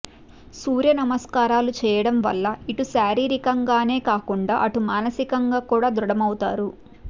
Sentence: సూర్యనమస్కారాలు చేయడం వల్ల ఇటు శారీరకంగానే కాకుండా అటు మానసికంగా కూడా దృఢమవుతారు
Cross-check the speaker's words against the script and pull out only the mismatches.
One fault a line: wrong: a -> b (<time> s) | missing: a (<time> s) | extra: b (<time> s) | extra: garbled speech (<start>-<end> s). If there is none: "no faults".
no faults